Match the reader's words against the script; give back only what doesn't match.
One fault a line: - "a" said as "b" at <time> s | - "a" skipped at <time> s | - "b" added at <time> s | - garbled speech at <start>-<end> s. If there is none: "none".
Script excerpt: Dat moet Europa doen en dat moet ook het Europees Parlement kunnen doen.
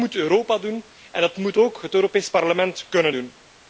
none